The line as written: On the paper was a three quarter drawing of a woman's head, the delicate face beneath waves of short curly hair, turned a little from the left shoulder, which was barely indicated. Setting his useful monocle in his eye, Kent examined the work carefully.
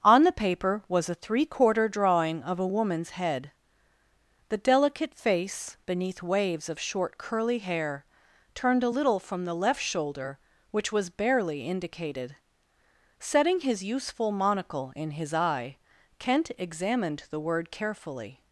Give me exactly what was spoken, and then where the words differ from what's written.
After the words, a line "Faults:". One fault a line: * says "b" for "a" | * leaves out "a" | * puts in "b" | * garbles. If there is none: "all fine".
On the paper was a three quarter drawing of a woman's head, the delicate face beneath waves of short curly hair, turned a little from the left shoulder, which was barely indicated. Setting his useful monocle in his eye, Kent examined the word carefully.
Faults:
* says "word" for "work"